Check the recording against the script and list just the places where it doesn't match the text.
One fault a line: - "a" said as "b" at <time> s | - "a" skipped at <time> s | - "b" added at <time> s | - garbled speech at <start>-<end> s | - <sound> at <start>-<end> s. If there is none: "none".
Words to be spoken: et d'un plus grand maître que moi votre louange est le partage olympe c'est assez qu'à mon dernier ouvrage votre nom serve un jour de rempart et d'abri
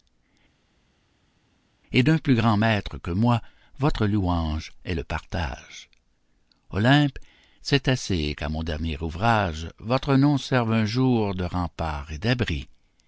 none